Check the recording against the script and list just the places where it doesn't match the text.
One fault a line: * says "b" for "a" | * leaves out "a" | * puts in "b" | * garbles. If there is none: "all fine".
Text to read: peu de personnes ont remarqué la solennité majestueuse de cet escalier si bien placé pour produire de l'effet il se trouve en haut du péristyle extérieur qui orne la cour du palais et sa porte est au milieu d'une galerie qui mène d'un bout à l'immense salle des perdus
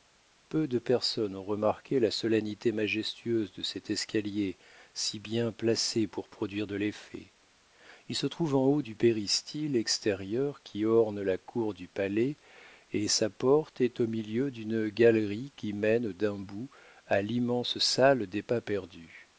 * puts in "pas"